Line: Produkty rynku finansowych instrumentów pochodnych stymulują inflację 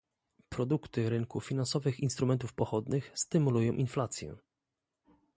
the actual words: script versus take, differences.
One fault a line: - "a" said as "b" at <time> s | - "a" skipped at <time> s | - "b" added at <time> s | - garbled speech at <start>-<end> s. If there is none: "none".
none